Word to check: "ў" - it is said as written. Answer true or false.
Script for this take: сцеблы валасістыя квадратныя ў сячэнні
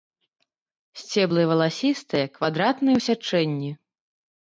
true